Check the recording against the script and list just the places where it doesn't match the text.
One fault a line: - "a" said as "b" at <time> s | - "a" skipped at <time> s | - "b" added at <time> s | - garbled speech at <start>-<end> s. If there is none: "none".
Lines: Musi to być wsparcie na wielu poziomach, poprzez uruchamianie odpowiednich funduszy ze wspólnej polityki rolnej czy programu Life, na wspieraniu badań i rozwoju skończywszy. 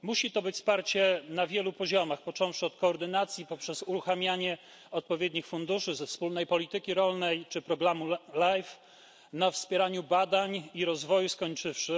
- "począwszy od koordynacji" added at 2.2 s